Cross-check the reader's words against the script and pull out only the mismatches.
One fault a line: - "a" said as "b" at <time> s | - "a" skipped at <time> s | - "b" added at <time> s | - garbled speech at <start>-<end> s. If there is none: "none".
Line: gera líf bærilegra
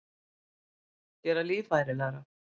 none